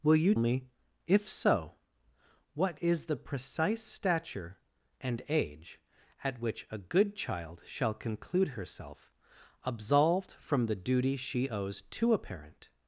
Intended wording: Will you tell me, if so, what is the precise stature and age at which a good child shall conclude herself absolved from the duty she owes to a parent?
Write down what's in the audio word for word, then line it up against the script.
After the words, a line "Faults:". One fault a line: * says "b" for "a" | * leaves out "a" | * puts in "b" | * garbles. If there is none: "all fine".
Will you me, if so, what is the precise stature and age at which a good child shall conclude herself absolved from the duty she owes to a parent?
Faults:
* leaves out "tell"